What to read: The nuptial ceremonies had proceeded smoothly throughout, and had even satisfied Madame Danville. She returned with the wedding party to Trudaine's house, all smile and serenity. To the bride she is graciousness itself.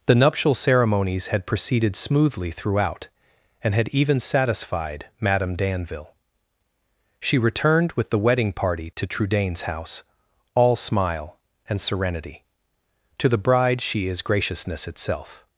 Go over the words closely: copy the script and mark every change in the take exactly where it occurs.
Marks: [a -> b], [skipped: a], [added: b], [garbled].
The nuptial ceremonies had proceeded smoothly throughout, and had even satisfied Madame Danville. She returned with the wedding party to Trudaine's house, all smile and serenity. To the bride she is graciousness itself.